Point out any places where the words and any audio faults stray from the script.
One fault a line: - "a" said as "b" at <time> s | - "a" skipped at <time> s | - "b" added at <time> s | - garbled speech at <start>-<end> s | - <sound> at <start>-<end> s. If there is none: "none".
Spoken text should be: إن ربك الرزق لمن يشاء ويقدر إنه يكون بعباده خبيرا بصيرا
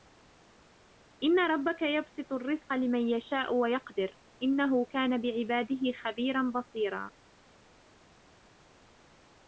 - "يبسط" added at 1.8 s
- "يكون" said as "كان" at 4.9 s